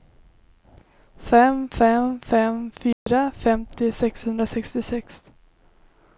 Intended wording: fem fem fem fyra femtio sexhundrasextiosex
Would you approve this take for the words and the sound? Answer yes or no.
no